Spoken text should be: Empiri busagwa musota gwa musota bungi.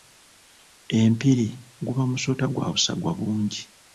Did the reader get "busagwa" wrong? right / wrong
wrong